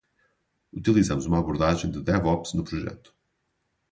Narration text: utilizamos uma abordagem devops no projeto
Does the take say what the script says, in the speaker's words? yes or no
no